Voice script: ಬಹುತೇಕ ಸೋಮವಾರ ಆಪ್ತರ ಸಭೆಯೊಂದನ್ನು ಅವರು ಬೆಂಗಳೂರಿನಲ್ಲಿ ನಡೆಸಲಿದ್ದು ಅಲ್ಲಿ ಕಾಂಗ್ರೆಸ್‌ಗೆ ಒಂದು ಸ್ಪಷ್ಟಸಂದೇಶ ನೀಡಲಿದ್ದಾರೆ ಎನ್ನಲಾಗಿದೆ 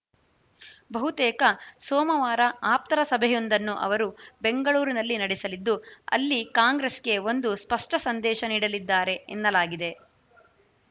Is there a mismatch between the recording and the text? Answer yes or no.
no